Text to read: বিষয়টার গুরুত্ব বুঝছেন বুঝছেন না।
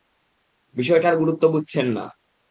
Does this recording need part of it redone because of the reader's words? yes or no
yes